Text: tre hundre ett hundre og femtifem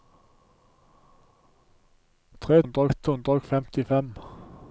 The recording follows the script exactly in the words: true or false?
true